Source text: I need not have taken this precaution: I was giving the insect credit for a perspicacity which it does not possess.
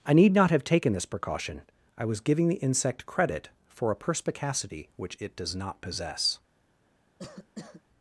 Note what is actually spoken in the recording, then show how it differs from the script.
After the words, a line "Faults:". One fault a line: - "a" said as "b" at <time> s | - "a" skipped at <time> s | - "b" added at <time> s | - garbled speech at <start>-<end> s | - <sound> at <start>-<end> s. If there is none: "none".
I need not have taken this precaution: I was giving the insect credit for a perspicacity which it does not possess.
Faults:
- cough at 7.2-7.8 s